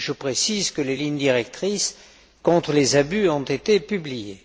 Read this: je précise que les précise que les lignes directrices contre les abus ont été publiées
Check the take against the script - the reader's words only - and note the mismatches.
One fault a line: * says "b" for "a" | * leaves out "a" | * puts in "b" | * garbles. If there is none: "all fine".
* leaves out "précise que les"